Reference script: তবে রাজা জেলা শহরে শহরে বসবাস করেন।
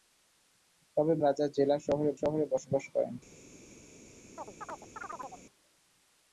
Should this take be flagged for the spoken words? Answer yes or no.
no